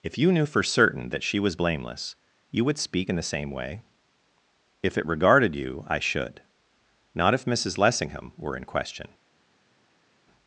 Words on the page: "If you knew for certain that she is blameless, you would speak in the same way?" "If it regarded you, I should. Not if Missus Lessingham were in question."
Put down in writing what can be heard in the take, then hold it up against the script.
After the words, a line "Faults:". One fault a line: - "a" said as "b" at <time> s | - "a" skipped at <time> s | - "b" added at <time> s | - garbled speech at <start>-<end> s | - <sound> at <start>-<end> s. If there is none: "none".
"If you knew for certain that she was blameless, you would speak in the same way?" "If it regarded you, I should. Not if Missus Lessingham were in question."
Faults:
- "is" said as "was" at 1.4 s